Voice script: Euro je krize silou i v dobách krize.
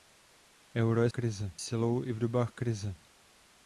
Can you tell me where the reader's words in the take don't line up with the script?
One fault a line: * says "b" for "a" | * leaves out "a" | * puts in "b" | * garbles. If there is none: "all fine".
all fine